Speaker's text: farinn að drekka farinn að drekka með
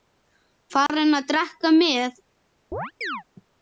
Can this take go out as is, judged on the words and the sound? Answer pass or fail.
fail